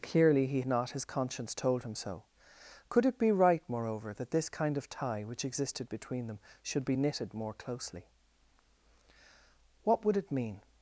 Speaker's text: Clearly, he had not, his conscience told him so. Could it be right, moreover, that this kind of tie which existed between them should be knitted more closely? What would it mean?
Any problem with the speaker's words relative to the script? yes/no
yes